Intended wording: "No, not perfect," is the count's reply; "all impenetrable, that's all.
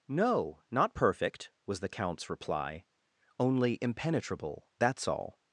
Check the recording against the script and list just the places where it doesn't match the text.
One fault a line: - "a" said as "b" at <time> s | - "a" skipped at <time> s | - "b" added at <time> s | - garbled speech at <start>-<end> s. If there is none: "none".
- "is" said as "was" at 1.7 s
- "all" said as "only" at 3.4 s